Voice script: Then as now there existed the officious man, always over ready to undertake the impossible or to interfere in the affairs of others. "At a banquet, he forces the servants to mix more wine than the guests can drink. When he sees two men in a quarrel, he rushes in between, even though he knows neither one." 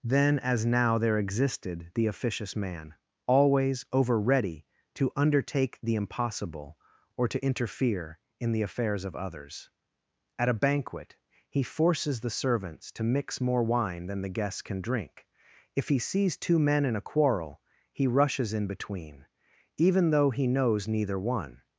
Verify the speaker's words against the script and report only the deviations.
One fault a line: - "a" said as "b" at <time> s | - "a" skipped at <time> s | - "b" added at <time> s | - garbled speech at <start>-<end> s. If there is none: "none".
- "When" said as "If" at 15.8 s